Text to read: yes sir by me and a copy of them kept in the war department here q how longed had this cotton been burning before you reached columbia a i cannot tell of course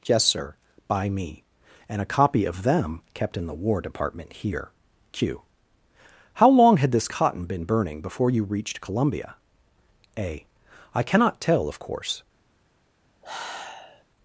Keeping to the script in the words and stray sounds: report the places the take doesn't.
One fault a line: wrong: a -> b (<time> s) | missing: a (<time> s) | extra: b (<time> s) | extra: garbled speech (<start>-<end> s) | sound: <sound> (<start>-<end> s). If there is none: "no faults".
wrong: longed -> long (6.5 s)
sound: sigh (13.2-14.0 s)